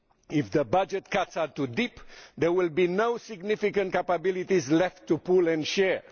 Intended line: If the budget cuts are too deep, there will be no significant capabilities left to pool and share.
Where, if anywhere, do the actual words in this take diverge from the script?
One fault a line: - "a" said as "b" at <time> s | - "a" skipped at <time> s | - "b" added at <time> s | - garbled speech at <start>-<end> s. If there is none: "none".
none